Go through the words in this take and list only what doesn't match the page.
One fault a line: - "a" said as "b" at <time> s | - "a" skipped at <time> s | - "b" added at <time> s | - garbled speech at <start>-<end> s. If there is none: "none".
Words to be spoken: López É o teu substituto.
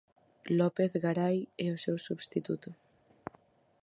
- "Garai" added at 1.0 s
- "teu" said as "seu" at 1.8 s